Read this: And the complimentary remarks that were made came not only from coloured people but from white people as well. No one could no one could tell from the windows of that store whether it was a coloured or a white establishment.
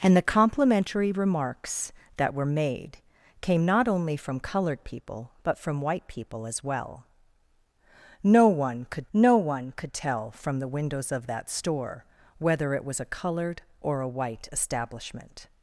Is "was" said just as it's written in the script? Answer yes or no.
yes